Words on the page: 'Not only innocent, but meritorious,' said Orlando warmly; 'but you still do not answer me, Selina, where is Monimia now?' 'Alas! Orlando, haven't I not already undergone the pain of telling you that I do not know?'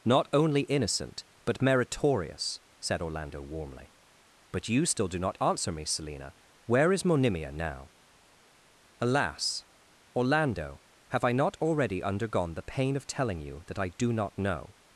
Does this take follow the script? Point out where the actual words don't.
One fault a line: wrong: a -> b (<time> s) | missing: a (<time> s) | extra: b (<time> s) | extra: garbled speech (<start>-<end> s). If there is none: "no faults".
wrong: haven't -> have (11.1 s)